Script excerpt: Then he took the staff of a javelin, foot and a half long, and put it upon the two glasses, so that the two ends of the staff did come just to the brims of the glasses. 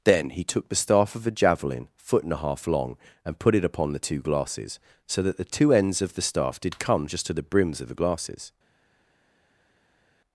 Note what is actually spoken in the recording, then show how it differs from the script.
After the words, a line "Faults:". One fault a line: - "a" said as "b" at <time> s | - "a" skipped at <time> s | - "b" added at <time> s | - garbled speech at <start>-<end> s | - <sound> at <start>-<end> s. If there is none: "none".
Then he took the staff of a javelin, foot and a half long, and put it upon the two glasses, so that the two ends of the staff did come just to the brims of the glasses.
Faults:
none